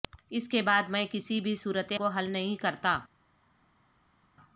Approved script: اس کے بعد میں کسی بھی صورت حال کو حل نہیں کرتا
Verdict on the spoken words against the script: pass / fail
fail